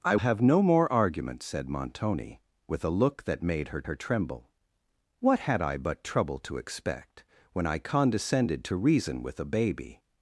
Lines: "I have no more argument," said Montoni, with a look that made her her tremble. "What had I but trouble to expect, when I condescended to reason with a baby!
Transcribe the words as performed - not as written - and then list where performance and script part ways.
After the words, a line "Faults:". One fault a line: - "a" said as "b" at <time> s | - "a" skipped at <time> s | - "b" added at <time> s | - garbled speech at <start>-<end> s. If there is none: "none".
"I have no more argument," said Montoni, with a look that made her her tremble. "What had I but trouble to expect, when I condescended to reason with a baby!
Faults:
none